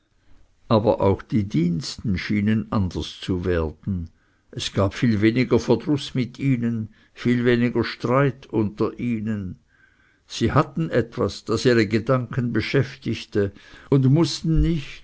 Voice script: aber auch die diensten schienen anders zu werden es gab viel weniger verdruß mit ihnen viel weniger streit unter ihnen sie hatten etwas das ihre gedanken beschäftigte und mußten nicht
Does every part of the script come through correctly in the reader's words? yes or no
yes